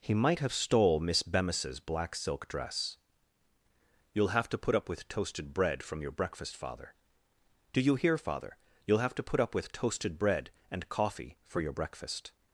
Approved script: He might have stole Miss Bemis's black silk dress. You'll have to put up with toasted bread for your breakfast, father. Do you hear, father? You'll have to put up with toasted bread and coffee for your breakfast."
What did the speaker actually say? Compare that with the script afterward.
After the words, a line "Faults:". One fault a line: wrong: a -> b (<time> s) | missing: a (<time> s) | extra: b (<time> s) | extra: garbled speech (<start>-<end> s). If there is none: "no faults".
He might have stole Miss Bemis's black silk dress. You'll have to put up with toasted bread from your breakfast, father. Do you hear, father? You'll have to put up with toasted bread and coffee for your breakfast."
Faults:
wrong: for -> from (5.8 s)